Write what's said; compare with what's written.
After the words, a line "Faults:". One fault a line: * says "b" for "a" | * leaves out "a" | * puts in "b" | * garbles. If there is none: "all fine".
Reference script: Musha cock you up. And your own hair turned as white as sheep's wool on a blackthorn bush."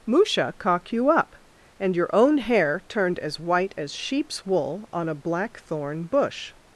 Musha cock you up. And your own hair turned as white as sheep's wool on a blackthorn bush."
Faults:
all fine